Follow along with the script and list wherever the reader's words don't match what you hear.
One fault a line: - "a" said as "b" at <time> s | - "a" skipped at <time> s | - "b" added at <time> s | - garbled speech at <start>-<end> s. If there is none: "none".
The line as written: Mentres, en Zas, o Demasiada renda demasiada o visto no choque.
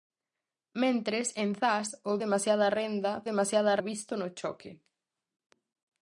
none